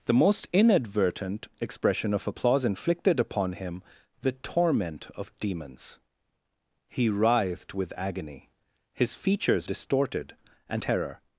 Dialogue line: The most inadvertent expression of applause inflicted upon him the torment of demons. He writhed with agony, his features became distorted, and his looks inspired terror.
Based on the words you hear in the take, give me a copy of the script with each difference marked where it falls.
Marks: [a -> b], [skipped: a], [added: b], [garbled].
The most inadvertent expression of applause inflicted upon him the torment of demons. He writhed with agony, his features [skipped: became] distorted, and [skipped: his looks inspired] terror.